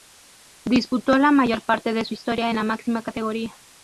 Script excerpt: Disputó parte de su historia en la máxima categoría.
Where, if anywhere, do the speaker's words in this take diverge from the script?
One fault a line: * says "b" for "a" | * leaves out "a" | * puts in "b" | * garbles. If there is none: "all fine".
* puts in "la mayor"